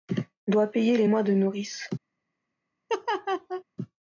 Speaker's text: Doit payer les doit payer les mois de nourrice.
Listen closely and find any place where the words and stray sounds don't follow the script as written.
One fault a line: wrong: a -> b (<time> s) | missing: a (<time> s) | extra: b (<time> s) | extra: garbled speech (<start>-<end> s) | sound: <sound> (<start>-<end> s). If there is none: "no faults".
missing: doit payer les (1.1 s)
sound: laugh (2.9-3.6 s)